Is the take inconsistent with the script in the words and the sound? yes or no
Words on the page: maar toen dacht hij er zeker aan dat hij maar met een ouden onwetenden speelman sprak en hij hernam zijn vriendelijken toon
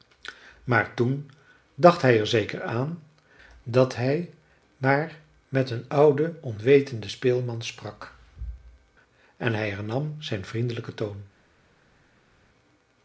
no